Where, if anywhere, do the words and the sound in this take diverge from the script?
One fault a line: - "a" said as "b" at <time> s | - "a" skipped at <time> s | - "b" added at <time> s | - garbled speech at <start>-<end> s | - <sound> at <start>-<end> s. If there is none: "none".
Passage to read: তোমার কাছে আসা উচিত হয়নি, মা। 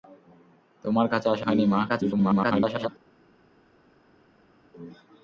- "উচিত" skipped at 1.4 s
- garbled speech at 1.9-2.9 s